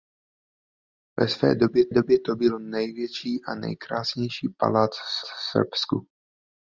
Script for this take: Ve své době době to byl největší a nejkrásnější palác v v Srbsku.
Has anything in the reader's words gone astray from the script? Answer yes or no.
no